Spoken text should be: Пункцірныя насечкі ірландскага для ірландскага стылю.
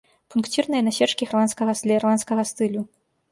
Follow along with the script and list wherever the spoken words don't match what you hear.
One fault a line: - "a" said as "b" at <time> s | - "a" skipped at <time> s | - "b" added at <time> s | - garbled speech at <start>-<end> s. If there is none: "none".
none